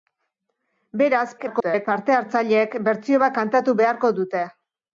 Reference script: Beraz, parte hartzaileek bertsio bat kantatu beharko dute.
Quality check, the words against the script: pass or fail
fail